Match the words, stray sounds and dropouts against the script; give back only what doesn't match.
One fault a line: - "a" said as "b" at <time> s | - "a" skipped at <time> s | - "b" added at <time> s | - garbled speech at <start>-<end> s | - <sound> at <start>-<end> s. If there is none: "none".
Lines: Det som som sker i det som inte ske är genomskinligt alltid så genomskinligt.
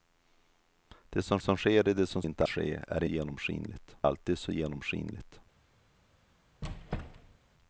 - squeak at 6.6-7.4 s